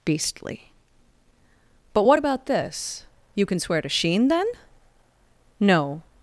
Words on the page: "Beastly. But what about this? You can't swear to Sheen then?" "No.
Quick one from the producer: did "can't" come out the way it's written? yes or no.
no